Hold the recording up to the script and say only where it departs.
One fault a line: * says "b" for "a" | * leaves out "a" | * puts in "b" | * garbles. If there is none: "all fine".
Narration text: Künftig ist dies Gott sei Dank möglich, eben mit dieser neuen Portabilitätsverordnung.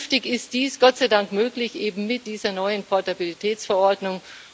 all fine